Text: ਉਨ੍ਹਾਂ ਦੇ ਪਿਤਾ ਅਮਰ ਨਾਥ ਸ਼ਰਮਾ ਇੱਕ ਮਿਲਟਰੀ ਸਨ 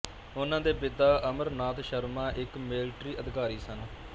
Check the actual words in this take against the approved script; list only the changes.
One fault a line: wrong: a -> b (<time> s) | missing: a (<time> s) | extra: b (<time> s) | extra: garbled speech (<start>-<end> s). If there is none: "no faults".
extra: ਅਧਿਕਾਰੀ (3.2 s)